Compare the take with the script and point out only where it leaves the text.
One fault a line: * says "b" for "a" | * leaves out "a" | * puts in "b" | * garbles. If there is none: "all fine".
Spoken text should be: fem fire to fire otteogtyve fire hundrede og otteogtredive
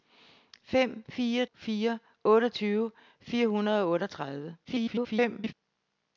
* leaves out "to"
* garbles